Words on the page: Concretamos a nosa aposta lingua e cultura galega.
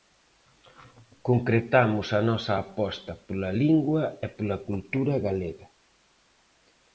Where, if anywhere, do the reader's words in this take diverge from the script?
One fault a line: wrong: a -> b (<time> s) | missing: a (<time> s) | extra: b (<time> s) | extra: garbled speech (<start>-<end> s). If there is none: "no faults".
extra: pola (3.3 s)
extra: pola (4.4 s)